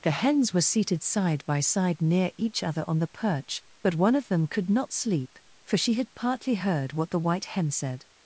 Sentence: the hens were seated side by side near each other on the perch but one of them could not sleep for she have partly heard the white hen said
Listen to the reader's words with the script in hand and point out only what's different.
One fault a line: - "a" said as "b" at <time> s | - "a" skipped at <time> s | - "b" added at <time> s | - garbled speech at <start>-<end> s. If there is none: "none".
- "have" said as "had" at 5.9 s
- "what" added at 6.9 s